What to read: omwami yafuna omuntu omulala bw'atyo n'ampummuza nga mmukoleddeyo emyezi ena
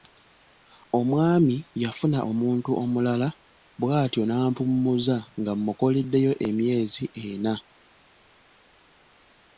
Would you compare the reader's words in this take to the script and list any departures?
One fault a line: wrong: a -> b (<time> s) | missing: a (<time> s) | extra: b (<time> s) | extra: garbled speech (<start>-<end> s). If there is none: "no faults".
no faults